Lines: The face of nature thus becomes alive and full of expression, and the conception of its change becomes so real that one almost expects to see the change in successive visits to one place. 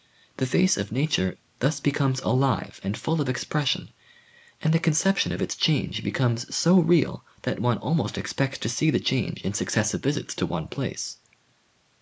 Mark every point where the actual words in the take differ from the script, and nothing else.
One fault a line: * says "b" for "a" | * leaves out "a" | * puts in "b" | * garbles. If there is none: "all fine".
all fine